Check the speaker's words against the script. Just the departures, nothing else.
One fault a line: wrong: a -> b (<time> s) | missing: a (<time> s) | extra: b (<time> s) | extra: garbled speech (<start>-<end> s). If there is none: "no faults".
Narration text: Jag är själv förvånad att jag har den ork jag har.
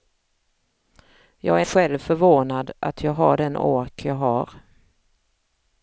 no faults